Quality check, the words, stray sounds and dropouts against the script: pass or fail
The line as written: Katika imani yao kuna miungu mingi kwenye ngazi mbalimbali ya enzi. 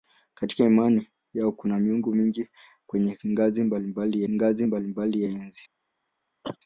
fail